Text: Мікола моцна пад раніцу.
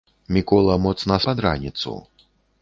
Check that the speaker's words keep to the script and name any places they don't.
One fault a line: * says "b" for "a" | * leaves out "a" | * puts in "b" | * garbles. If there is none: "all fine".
all fine